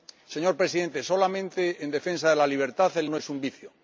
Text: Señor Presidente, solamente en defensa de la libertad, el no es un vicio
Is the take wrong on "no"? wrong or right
right